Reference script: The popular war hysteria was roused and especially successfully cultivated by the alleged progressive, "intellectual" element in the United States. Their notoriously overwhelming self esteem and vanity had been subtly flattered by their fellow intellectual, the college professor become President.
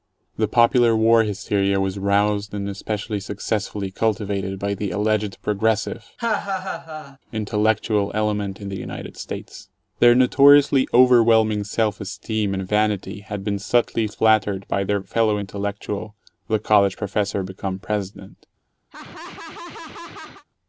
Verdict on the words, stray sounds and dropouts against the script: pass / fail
fail